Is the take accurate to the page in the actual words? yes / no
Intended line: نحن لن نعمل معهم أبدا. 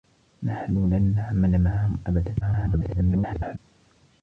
no